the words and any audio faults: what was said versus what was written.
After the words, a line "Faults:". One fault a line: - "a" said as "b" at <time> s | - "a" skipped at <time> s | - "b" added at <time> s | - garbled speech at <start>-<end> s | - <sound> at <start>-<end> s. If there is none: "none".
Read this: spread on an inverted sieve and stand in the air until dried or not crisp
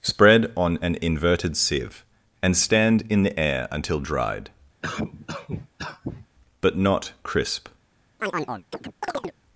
spread on an inverted sieve and stand in the air until dried but not crisp
Faults:
- cough at 4.8-6.3 s
- "or" said as "but" at 6.6 s
- chirp at 8.2-9.4 s